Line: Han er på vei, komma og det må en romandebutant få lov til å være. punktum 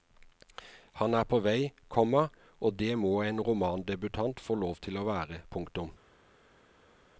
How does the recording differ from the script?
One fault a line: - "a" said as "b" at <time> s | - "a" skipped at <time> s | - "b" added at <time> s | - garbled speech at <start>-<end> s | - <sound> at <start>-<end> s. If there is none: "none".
none